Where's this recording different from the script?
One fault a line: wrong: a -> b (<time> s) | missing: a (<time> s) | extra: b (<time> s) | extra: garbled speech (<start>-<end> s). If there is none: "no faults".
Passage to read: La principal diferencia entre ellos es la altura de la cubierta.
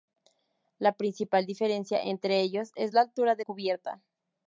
missing: la (3.4 s)